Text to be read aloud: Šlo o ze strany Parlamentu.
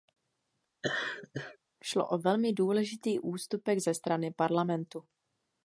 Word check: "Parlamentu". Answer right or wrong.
right